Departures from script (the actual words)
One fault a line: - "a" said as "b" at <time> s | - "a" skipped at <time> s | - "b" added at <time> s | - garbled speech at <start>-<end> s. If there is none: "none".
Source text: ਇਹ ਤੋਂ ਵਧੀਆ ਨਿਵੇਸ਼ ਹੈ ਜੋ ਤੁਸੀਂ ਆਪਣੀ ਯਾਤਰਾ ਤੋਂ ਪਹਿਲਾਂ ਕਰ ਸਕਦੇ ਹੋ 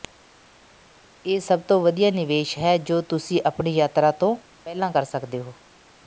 - "ਸਭ" added at 1.4 s